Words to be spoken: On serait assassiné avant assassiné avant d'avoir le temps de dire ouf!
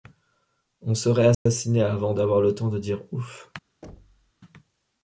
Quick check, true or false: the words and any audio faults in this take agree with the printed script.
false